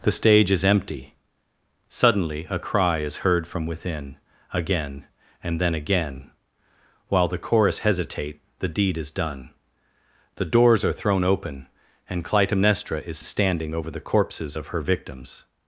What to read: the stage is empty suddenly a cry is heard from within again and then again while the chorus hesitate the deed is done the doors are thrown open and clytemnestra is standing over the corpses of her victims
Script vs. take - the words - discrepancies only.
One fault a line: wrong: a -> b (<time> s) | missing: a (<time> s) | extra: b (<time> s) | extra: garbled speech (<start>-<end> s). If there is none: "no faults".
no faults